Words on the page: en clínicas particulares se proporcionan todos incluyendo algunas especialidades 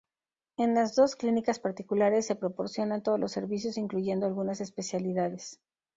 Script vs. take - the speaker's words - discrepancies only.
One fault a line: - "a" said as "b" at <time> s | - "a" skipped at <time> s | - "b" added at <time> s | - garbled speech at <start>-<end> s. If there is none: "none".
- "las dos" added at 0.7 s
- "los servicios" added at 3.2 s